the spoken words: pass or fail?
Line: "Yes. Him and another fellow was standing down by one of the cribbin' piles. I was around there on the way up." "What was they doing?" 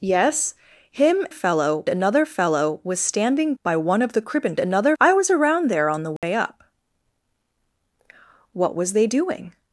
fail